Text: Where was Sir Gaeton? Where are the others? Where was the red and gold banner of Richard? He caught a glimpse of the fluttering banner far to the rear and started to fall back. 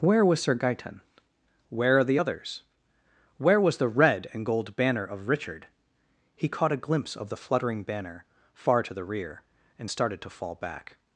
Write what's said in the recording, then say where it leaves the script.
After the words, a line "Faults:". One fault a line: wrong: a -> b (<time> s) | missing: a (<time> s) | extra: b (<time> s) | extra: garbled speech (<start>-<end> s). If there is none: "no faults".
Where was Sir Gaeton? Where are the others? Where was the red and gold banner of Richard? He caught a glimpse of the fluttering banner far to the rear and started to fall back.
Faults:
no faults